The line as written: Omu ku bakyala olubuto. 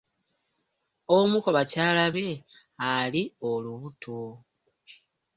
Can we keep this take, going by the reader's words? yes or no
no